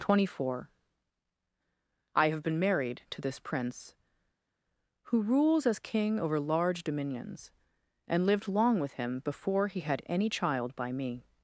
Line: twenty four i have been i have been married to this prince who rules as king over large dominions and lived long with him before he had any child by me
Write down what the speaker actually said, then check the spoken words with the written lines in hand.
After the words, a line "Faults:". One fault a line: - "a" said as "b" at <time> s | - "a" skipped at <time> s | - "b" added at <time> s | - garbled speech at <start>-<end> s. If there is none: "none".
twenty four i have been married to this prince who rules as king over large dominions and lived long with him before he had any child by me
Faults:
- "i have been" skipped at 2.6 s